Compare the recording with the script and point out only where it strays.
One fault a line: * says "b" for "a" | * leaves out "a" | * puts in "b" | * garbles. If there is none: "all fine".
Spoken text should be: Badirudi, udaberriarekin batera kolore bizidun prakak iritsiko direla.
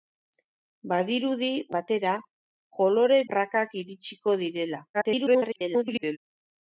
* leaves out "udaberriarekin"
* leaves out "bizidun"
* garbles